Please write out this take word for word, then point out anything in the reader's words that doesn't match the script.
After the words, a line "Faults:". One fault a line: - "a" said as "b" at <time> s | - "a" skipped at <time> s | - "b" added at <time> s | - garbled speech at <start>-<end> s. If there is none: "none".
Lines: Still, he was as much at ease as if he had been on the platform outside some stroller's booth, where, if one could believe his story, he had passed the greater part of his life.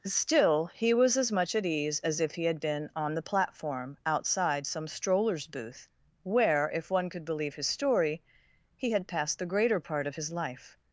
Still, he was as much at ease as if he had been on the platform outside some stroller's booth, where, if one could believe his story, he had passed the greater part of his life.
Faults:
none